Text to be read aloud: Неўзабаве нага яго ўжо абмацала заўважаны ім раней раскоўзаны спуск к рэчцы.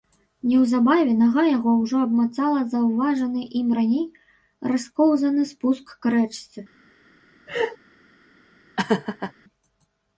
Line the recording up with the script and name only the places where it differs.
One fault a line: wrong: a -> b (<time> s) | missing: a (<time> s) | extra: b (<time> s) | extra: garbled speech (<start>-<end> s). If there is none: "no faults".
no faults